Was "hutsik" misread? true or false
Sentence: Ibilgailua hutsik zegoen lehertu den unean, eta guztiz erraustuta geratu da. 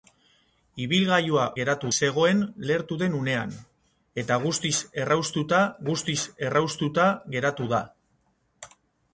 true